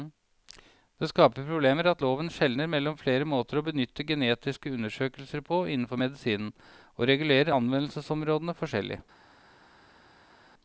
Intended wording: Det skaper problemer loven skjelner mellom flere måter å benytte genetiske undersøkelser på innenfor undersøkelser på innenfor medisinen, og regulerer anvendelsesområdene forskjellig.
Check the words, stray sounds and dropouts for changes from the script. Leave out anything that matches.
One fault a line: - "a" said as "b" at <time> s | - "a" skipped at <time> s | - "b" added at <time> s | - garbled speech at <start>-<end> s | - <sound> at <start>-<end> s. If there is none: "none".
- "at" added at 1.9 s
- "undersøkelser på innenfor" skipped at 6.0 s